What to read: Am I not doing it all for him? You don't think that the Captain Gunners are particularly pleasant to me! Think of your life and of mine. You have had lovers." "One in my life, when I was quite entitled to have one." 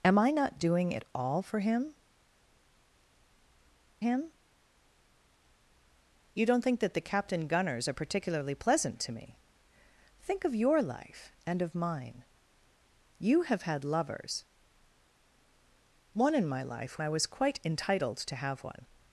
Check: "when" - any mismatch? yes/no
yes